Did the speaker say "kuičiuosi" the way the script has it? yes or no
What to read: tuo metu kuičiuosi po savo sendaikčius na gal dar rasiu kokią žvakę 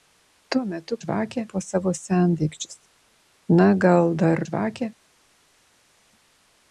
no